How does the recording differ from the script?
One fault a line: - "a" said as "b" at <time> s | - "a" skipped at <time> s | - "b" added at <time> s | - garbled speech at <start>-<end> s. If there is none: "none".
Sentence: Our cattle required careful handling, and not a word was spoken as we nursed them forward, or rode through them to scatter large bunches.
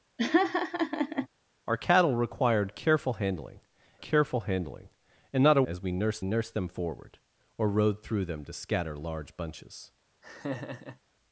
- "careful handling" added at 4.0 s
- "word was spoken" skipped at 5.6 s
- "nursed" added at 6.2 s